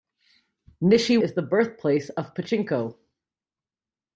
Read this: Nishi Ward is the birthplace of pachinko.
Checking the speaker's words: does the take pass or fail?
fail